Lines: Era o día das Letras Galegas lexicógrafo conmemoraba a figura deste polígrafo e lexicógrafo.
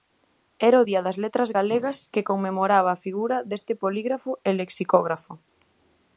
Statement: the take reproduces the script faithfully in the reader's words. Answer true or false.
false